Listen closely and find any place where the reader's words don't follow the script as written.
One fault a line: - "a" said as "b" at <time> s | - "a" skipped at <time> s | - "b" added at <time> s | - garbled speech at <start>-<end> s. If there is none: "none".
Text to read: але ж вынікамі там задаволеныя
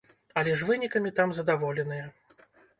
none